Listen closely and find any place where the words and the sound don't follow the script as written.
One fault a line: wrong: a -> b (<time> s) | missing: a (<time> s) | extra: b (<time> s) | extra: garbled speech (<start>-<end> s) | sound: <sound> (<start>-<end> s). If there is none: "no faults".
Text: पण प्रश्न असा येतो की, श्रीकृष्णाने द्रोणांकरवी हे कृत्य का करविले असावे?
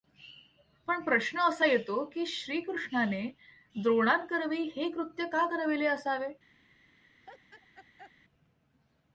sound: laugh (7.2-8.1 s)